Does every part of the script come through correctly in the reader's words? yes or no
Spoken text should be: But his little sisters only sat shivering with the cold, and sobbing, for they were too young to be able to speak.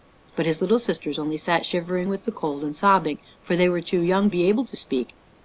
no